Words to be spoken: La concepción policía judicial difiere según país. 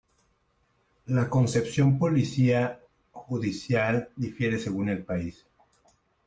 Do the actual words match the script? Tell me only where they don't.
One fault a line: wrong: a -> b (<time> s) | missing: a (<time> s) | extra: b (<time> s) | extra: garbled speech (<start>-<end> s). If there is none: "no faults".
extra: el (4.9 s)